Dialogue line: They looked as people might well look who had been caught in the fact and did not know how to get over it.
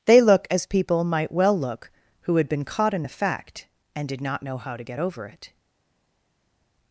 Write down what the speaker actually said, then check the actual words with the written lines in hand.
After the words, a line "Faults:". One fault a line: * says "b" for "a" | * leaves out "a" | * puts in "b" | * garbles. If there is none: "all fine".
They look as people might well look who had been caught in the fact and did not know how to get over it.
Faults:
* says "look" for "looked"